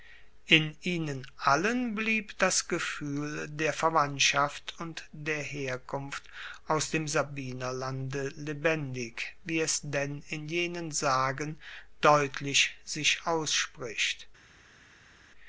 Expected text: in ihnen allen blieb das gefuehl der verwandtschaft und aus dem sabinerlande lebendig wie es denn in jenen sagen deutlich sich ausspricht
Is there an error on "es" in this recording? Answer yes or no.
no